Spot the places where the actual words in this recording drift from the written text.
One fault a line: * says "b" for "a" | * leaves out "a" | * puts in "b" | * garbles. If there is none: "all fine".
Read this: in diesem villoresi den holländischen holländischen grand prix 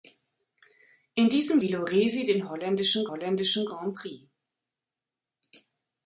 all fine